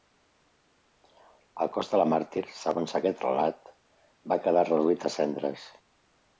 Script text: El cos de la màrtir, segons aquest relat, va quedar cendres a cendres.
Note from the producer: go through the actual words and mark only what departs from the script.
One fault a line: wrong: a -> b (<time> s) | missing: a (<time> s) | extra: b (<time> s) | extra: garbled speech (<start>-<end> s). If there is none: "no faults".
wrong: cendres -> reduït (4.7 s)